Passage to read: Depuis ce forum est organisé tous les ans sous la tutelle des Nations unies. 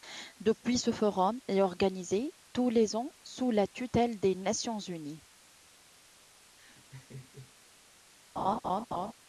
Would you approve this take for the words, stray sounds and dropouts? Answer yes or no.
no